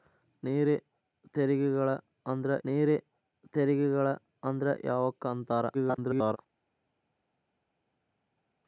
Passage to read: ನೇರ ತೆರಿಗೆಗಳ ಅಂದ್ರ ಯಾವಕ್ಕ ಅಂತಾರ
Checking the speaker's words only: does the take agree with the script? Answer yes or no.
no